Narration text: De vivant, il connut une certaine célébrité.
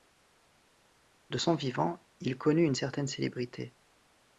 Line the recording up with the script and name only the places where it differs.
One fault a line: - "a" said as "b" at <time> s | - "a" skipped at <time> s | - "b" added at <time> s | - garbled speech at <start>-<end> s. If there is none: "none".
- "son" added at 1.3 s